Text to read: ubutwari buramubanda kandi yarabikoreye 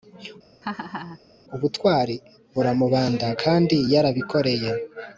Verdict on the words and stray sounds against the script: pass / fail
fail